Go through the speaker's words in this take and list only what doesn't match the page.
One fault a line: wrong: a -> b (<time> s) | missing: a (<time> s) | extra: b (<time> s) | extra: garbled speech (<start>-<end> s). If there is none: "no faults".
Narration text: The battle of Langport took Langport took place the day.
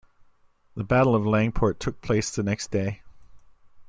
missing: Langport took (2.0 s)
extra: next (2.4 s)